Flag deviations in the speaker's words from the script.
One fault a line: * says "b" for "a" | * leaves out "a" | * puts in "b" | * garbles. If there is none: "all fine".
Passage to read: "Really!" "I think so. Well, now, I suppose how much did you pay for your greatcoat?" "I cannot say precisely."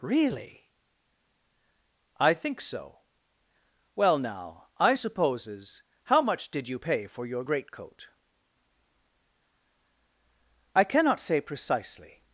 * says "supposes" for "suppose"